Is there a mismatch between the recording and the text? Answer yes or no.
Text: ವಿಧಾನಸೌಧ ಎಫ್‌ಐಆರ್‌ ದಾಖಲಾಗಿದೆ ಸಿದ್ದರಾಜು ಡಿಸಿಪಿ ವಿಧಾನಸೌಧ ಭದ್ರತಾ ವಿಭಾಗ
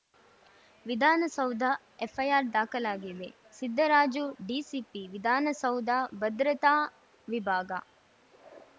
no